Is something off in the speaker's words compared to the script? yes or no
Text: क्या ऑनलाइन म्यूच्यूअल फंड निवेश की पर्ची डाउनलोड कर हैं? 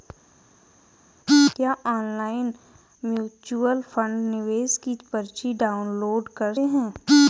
no